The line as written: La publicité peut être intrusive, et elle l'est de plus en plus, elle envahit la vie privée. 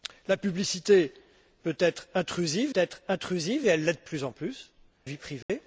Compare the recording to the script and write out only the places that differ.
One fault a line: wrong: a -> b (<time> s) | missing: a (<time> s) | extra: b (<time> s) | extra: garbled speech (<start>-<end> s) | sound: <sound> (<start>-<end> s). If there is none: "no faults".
extra: être intrusive (2.7 s)
missing: elle envahit la (4.7 s)
sound: dropout (5.4-5.5 s)